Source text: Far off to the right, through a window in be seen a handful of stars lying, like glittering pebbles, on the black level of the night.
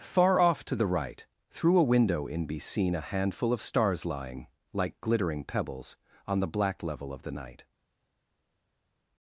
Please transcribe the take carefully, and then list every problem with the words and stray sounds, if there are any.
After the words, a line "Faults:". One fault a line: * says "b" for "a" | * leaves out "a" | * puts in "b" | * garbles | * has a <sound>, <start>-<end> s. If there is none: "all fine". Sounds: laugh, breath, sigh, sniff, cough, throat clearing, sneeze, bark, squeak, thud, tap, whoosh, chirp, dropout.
Far off to the right, through a window in be seen a handful of stars lying, like glittering pebbles, on the black level of the night.
Faults:
all fine